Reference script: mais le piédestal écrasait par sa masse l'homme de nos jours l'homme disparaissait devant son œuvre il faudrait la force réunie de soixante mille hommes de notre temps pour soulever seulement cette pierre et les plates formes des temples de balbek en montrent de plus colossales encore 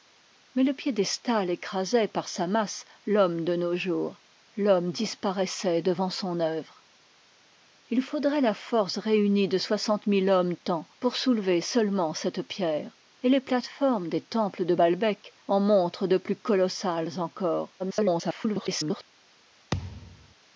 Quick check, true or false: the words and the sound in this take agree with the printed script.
false